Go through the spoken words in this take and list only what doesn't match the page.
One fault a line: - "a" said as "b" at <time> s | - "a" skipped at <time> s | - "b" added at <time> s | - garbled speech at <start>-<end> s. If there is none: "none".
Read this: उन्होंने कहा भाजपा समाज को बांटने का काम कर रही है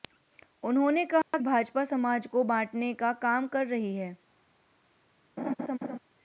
none